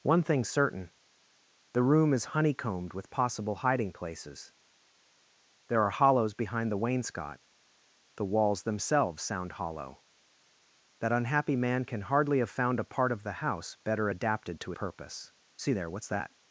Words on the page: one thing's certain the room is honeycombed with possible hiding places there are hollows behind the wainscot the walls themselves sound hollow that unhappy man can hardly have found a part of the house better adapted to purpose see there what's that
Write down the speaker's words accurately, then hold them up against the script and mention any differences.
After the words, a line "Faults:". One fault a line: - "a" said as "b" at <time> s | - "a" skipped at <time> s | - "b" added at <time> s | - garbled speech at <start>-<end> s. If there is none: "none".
one thing's certain the room is honeycombed with possible hiding places there are hollows behind the wainscot the walls themselves sound hollow that unhappy man can hardly have found a part of the house better adapted to purpose see there what's that
Faults:
none